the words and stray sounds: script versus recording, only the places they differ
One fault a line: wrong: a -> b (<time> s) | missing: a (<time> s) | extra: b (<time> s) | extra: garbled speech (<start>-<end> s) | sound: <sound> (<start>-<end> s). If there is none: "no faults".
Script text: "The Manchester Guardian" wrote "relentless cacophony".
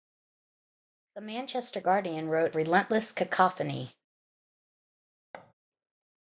sound: thud (5.3-5.5 s)